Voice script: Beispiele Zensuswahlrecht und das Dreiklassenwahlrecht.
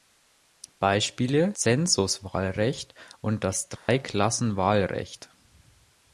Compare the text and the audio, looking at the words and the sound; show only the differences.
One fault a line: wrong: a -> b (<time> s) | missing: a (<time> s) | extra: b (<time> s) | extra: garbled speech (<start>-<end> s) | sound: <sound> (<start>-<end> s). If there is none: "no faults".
sound: dropout (3.8-3.9 s)